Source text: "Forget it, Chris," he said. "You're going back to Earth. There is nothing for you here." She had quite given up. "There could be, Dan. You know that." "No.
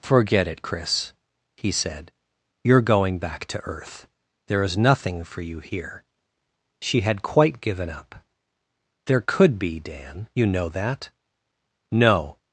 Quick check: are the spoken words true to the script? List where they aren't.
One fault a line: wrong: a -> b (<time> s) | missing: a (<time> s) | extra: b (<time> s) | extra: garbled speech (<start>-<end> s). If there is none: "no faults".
no faults